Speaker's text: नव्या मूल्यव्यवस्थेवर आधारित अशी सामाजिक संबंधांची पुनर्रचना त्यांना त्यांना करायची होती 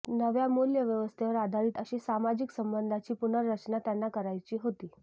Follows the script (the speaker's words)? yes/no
no